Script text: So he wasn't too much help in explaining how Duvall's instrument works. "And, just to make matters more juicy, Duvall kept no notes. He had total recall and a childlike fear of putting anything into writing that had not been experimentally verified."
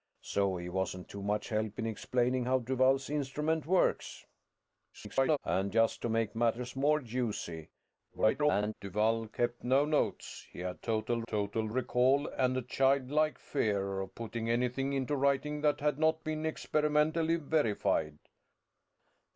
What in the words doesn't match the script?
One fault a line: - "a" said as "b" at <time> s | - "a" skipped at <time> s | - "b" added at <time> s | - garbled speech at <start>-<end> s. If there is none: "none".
- garbled speech at 4.9-5.4 s
- garbled speech at 8.1-8.7 s
- "total" added at 11.3 s